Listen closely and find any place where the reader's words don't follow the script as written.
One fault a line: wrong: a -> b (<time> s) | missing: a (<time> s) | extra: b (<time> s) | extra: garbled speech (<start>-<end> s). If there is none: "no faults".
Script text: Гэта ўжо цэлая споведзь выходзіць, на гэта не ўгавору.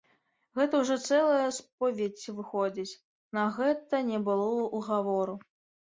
extra: было (4.3 s)